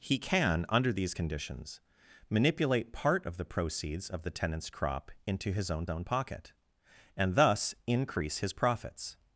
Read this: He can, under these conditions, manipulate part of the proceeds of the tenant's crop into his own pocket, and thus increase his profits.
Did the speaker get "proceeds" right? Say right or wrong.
right